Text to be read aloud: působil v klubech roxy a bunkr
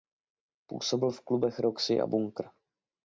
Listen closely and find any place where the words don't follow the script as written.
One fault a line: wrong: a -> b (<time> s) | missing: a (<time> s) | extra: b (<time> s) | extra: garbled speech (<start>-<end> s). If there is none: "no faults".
no faults